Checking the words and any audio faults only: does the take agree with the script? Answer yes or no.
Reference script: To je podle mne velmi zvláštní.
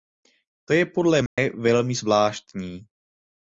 no